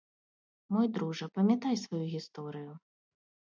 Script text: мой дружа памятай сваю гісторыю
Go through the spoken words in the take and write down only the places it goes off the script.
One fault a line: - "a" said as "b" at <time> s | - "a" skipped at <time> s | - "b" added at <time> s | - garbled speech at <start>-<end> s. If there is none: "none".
none